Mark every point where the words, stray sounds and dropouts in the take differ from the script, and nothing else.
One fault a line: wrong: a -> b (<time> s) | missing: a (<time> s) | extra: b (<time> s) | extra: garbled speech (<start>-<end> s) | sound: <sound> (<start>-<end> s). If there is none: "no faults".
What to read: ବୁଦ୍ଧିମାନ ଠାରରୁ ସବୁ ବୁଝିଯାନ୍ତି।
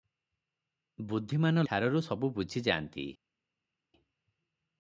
no faults